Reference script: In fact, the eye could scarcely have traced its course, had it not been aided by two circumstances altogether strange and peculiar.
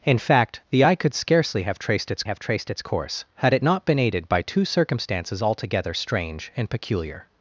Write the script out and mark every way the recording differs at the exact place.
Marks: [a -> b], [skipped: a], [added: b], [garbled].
In fact, the eye could scarcely have traced its [added: have traced its] course, had it not been aided by two circumstances altogether strange and peculiar.